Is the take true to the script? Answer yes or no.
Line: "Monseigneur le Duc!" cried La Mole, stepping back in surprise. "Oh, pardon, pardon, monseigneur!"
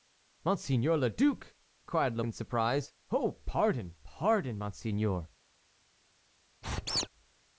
no